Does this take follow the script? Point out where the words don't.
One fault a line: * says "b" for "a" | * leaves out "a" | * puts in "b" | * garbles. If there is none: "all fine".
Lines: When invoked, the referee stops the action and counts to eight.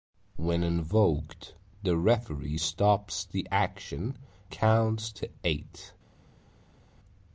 * leaves out "and"